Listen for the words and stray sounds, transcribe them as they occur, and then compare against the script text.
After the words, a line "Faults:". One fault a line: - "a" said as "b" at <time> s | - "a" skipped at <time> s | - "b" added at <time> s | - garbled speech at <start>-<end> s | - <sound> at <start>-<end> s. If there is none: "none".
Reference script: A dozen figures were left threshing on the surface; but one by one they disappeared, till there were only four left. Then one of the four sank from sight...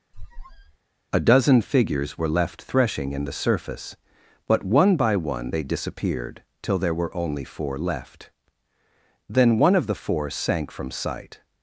A dozen figures were left threshing in the surface; but one by one they disappeared, till there were only four left. Then one of the four sank from sight...
Faults:
- squeak at 0.1-0.8 s
- "on" said as "in" at 3.1 s